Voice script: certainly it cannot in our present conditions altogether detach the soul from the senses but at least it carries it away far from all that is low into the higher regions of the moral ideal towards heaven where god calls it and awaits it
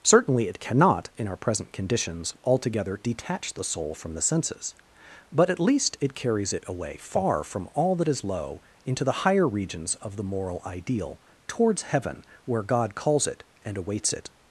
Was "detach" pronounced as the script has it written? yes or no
yes